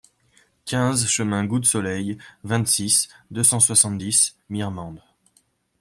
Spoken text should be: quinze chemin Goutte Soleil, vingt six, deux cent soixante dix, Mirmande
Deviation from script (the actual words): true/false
false